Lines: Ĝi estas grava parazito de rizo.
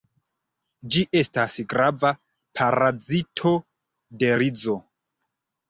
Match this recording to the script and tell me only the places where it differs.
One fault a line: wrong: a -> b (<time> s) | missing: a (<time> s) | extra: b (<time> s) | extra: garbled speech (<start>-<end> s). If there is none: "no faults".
no faults